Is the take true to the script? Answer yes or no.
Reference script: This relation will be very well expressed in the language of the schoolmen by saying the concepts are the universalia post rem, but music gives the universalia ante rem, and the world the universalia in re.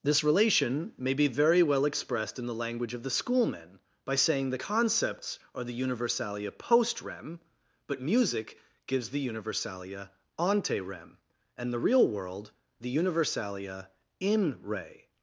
no